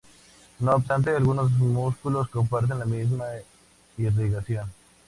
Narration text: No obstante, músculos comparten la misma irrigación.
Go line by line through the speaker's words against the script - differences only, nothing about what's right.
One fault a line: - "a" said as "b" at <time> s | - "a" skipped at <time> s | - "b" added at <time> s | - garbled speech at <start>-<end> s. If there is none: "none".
- "algunos" added at 1.1 s